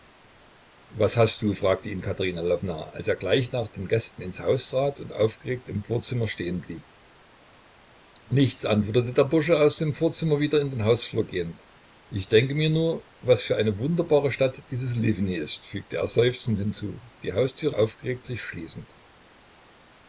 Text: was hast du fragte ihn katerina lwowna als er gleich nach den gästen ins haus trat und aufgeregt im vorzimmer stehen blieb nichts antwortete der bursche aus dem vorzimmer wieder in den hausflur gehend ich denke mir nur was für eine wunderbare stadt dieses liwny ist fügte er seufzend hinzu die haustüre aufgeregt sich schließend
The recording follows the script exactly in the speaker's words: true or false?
true